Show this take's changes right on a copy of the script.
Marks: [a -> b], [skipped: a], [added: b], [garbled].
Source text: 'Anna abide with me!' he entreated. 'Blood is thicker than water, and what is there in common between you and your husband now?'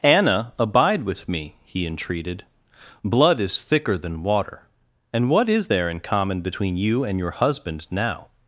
'Anna abide with me!' he entreated. 'Blood is thicker than water, and what is there in common between you and your husband now?'